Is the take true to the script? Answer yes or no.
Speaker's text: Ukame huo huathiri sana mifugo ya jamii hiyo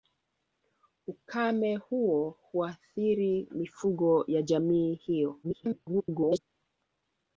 no